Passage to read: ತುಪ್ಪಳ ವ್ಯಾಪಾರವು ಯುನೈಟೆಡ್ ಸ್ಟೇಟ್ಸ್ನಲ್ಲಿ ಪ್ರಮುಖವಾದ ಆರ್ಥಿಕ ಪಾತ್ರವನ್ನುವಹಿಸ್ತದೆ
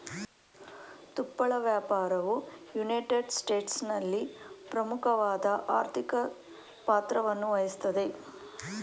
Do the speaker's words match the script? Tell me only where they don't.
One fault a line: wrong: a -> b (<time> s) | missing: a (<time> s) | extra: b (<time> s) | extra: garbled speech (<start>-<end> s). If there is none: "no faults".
no faults